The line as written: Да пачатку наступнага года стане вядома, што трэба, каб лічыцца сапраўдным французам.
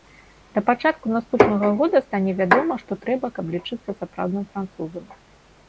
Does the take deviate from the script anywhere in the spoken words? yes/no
no